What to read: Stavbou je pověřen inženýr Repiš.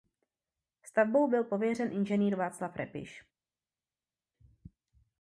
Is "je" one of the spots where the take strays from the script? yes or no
yes